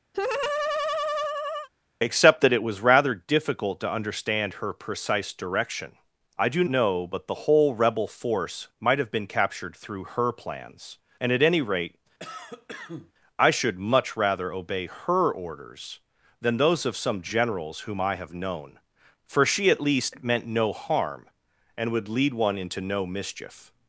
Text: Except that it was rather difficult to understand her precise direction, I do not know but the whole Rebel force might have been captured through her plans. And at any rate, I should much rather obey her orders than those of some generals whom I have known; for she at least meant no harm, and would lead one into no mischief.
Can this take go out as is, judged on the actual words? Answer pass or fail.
fail